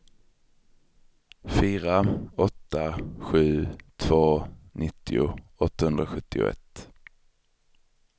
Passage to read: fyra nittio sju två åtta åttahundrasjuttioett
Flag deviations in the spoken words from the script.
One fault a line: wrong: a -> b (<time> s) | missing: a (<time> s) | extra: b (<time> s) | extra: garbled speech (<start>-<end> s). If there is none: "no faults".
wrong: nittio -> åtta (2.4 s)
wrong: åtta -> nittio (4.7 s)